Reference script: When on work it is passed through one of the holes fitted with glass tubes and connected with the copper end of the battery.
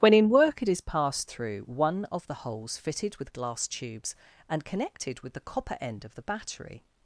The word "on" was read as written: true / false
false